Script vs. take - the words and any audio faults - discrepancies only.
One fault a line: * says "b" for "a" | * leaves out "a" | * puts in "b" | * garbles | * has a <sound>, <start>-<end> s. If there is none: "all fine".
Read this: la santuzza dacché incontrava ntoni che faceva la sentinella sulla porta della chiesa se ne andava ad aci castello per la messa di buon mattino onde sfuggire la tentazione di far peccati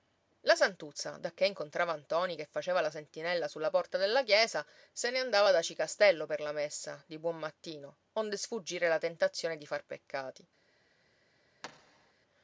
* has a thud, 11.6-12.1 s